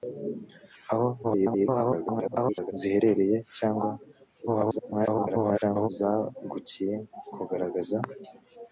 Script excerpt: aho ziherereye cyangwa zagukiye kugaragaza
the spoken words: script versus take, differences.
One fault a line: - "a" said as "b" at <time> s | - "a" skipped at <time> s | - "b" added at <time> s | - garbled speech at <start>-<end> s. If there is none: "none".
- garbled speech at 1.2-2.7 s
- garbled speech at 4.5-5.9 s